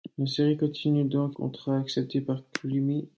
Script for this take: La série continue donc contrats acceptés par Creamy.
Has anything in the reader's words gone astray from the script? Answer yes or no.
no